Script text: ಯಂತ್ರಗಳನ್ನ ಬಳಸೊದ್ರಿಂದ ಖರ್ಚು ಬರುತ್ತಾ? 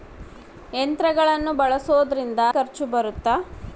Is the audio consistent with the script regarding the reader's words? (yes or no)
yes